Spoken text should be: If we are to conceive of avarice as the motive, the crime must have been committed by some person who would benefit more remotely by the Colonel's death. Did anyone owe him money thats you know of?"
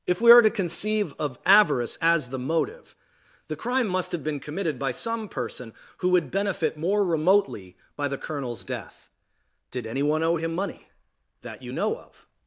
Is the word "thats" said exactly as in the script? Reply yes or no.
no